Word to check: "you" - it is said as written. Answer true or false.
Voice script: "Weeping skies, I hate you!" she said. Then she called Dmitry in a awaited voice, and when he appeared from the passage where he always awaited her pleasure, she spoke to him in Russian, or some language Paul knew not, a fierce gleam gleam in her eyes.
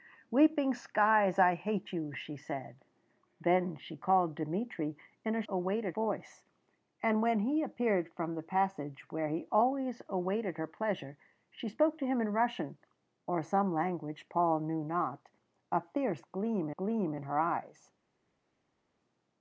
true